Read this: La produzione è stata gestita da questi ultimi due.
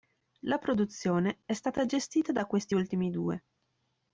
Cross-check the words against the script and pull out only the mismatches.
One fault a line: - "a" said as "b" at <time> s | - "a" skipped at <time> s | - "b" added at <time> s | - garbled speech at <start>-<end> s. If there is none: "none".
none